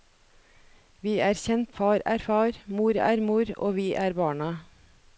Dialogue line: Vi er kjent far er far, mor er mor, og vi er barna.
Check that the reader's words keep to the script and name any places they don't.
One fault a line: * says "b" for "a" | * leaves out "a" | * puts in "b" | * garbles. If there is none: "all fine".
all fine